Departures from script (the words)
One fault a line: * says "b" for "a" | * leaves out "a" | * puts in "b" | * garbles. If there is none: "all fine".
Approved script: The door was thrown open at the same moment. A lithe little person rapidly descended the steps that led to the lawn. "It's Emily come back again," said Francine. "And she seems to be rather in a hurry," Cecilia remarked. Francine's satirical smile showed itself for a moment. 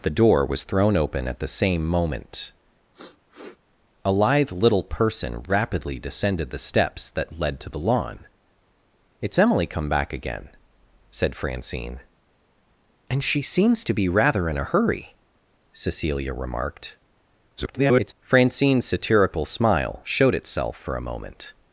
* garbles